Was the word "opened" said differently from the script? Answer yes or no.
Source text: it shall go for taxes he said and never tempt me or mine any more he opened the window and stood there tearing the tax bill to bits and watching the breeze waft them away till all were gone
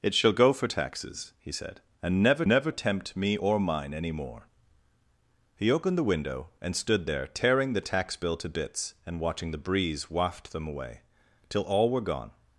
no